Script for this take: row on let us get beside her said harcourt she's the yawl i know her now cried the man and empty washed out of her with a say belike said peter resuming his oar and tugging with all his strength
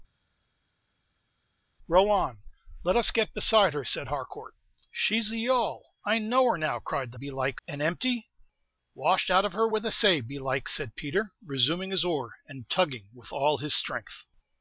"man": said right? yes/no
no